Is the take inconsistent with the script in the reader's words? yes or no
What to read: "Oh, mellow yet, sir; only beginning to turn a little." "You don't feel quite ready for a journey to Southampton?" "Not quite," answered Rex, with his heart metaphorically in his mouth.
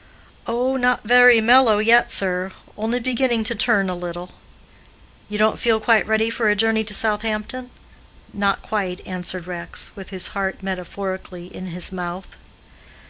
yes